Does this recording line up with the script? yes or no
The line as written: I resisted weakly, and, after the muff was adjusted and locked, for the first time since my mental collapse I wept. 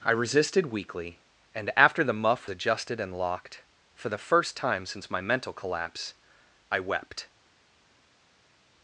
no